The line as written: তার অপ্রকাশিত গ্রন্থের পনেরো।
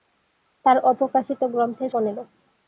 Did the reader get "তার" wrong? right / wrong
right